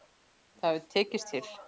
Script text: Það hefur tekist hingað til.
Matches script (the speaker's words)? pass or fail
fail